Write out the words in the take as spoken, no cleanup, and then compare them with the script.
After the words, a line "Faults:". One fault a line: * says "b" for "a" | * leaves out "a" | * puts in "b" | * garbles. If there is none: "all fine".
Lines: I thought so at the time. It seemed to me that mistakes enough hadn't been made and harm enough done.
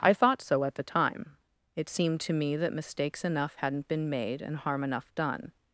I thought so at the time. It seemed to me that mistakes enough hadn't been made and harm enough done.
Faults:
all fine